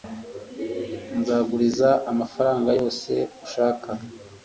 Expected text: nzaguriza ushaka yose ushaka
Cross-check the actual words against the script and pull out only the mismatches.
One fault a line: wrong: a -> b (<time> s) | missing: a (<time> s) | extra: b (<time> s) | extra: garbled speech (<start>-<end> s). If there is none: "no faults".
wrong: ushaka -> amafaranga (2.1 s)